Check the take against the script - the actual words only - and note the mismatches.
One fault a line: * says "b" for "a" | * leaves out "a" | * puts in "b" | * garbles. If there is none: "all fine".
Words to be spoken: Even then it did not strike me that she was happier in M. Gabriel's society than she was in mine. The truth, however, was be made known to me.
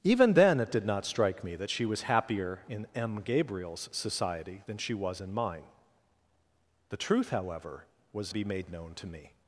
all fine